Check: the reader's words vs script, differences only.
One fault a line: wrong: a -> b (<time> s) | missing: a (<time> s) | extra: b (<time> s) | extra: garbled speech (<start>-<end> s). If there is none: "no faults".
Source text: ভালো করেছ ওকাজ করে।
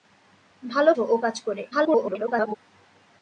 missing: করেছ (0.9 s)
extra: garbled speech (1.7-2.6 s)